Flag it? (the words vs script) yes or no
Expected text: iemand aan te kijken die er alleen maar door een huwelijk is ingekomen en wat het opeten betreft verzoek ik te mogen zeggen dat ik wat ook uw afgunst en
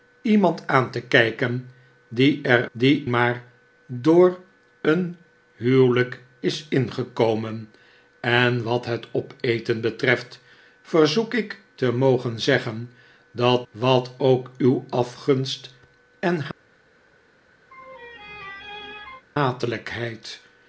yes